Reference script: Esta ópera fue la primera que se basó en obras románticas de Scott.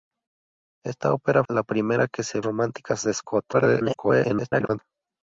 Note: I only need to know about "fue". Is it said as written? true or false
false